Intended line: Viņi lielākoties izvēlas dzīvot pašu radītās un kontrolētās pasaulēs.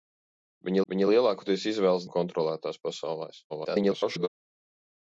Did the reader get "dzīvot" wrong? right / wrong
wrong